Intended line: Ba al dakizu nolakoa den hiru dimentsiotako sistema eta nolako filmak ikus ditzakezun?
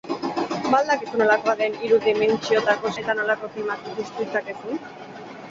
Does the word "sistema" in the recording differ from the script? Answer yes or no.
yes